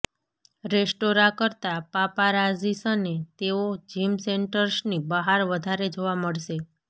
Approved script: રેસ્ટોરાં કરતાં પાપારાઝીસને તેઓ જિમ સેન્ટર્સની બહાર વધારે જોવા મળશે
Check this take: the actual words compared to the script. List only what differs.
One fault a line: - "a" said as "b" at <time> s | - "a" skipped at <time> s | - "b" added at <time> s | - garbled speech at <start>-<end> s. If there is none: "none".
none